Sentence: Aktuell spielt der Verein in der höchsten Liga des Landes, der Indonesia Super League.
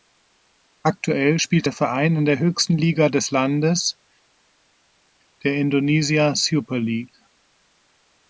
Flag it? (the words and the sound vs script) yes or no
no